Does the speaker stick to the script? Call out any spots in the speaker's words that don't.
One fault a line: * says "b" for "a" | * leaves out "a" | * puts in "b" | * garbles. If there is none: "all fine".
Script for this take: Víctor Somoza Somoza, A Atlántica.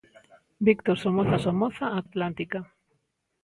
all fine